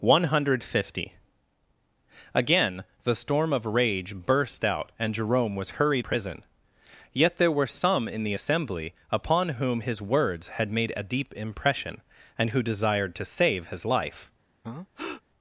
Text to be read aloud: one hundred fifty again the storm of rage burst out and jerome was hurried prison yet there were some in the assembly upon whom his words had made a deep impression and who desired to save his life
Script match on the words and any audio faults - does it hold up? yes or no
no